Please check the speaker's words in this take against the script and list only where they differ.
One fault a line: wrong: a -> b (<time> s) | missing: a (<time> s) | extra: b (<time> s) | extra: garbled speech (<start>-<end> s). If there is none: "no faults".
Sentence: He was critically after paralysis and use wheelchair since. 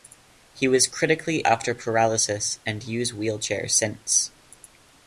no faults